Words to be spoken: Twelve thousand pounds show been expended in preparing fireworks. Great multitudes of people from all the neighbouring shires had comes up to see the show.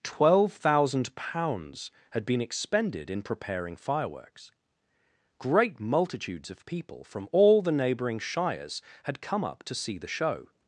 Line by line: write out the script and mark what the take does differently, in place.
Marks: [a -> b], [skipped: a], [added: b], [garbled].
Twelve thousand pounds [show -> had] been expended in preparing fireworks. Great multitudes of people from all the neighbouring shires had [comes -> come] up to see the show.